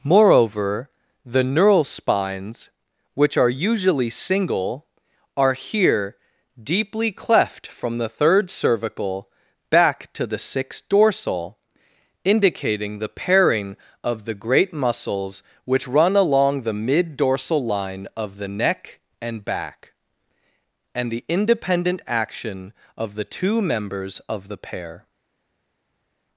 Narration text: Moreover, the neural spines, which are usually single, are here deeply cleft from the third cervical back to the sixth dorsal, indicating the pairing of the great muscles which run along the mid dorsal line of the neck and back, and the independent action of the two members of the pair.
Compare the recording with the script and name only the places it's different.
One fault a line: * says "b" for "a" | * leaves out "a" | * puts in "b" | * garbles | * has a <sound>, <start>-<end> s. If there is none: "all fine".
all fine